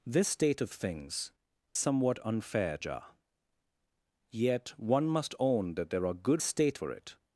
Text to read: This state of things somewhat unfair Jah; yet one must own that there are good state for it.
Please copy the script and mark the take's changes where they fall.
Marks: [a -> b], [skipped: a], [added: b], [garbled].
This state of things somewhat unfair Jah; yet one must own that there are good state for it.